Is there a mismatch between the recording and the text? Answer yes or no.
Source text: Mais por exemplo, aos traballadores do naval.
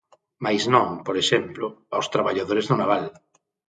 yes